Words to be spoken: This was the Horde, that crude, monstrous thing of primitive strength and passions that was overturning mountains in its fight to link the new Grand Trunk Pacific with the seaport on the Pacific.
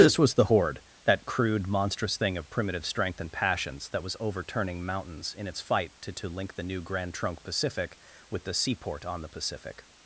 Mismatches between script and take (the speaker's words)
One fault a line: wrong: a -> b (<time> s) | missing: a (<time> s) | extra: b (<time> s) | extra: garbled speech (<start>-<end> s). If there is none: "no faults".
extra: to (6.1 s)